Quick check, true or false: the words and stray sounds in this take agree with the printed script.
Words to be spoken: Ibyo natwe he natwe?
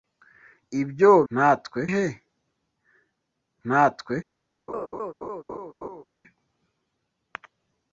false